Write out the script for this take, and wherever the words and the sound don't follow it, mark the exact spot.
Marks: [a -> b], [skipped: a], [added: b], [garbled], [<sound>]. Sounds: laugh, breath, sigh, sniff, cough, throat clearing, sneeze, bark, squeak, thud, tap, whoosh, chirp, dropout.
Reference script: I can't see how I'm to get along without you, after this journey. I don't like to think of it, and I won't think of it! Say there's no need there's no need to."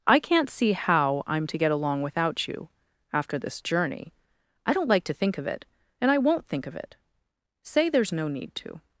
I can't see how I'm to get along without you, after this journey. I don't like to think of it, and I won't think of it! Say there's no need [skipped: there's no need] to."